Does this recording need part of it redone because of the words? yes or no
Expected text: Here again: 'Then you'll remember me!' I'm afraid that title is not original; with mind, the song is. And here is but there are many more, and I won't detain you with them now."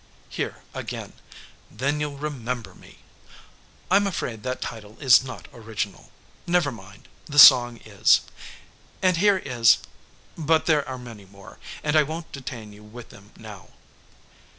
yes